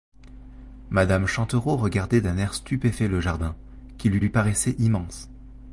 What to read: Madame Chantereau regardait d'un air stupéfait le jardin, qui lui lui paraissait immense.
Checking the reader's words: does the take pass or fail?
pass